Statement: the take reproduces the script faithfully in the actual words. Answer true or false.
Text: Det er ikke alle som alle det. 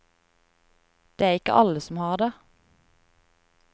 false